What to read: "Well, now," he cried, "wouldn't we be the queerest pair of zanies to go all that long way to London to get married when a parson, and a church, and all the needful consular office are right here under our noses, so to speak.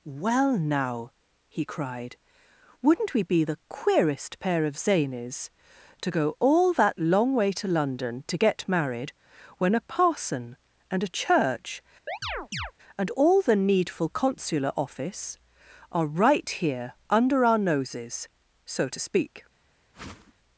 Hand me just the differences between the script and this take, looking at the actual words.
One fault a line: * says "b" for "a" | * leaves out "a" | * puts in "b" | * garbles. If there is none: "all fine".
all fine